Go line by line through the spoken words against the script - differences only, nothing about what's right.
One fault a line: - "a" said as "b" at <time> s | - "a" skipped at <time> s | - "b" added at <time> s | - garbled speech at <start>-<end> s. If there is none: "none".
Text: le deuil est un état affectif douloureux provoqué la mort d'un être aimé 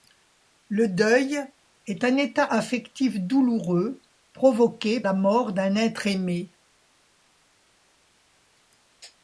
none